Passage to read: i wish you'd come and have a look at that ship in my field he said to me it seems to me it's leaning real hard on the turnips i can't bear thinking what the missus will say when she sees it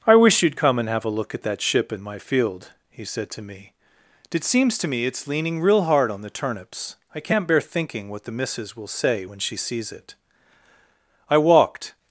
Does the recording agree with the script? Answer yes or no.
no